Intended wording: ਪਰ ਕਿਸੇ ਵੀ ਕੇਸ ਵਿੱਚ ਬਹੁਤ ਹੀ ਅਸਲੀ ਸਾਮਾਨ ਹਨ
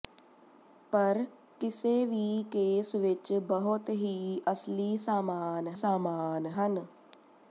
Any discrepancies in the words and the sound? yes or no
yes